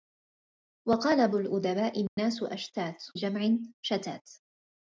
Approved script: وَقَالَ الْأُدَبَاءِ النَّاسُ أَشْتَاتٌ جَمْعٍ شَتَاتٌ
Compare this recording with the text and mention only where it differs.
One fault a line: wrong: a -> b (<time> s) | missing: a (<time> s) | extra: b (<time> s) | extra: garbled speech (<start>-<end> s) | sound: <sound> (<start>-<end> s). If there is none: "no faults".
sound: dropout (2.1-2.2 s)